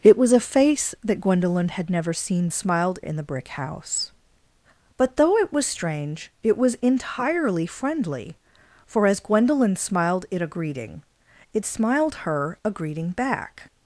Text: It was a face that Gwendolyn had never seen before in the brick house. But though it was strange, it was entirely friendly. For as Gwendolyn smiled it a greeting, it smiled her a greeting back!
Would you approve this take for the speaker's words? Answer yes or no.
no